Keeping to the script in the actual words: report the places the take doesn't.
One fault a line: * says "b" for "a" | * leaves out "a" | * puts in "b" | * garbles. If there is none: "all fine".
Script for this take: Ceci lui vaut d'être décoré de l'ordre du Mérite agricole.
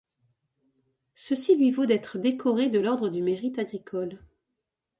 all fine